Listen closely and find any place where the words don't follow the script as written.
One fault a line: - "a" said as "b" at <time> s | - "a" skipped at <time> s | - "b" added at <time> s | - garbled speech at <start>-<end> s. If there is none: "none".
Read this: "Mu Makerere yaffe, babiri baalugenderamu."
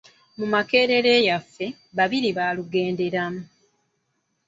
none